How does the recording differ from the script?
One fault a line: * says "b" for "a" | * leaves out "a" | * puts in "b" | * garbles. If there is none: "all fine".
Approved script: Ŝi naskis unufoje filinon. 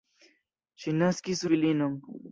* leaves out "unufoje"